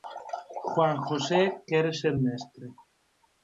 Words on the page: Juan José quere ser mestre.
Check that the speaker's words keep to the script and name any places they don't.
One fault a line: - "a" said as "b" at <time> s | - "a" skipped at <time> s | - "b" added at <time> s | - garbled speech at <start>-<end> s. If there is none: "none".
none